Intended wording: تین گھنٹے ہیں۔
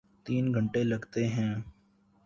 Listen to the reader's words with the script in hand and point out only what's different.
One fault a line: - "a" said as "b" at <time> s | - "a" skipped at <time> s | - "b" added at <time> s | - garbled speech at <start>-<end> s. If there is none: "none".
- "لگتے" added at 0.8 s